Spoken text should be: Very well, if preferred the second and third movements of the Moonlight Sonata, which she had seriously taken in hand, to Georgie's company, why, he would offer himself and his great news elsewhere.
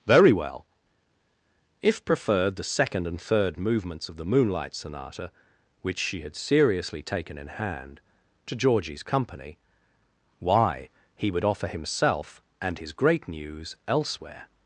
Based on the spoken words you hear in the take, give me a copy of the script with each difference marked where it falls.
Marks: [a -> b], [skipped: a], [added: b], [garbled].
Very well, if preferred the second and third movements of the Moonlight Sonata, which she had seriously taken in hand, to Georgie's company, why, he would offer himself and his great news elsewhere.